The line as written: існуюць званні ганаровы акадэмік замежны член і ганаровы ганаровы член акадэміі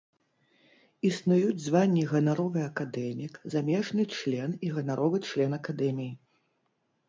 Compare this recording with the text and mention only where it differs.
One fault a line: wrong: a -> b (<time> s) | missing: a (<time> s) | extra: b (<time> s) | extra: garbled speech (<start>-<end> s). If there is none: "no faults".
missing: ганаровы (5.2 s)